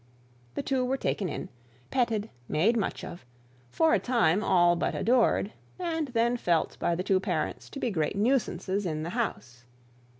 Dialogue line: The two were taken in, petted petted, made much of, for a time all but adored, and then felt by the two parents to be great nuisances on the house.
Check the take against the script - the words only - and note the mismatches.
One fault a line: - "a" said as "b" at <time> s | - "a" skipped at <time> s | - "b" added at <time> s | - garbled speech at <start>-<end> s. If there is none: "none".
- "petted" skipped at 2.3 s
- "on" said as "in" at 8.9 s